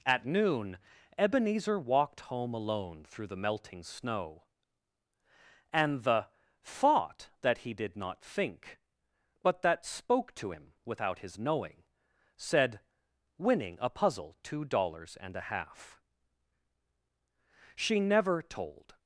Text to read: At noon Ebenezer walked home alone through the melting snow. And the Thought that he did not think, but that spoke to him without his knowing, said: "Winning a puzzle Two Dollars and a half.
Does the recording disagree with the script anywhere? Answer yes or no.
yes